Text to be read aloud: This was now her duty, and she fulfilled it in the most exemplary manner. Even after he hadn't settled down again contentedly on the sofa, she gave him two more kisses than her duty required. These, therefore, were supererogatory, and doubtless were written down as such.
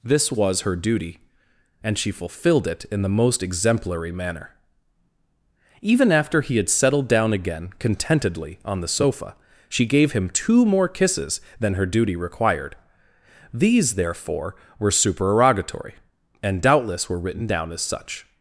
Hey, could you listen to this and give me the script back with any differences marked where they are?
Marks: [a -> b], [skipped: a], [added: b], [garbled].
This was [skipped: now] her duty, and she fulfilled it in the most exemplary manner. Even after he [hadn't -> had] settled down again contentedly on the sofa, she gave him two more kisses than her duty required. These, therefore, were supererogatory, and doubtless were written down as such.